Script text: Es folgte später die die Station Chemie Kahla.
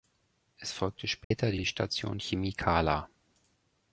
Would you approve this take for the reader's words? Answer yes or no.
yes